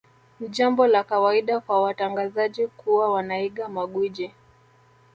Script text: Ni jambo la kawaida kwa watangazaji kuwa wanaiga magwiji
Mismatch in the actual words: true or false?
false